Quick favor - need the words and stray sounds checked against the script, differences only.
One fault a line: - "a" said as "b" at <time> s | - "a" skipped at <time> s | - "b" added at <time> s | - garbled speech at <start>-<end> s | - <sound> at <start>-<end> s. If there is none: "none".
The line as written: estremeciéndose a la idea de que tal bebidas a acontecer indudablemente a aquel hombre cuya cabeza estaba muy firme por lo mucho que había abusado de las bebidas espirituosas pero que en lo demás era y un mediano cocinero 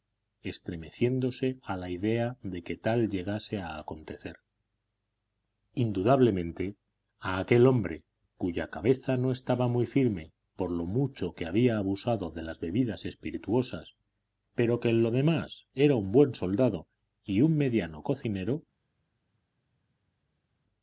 - "bebidas" said as "llegase" at 3.1 s
- "no" added at 9.2 s
- "un buen soldado" added at 16.0 s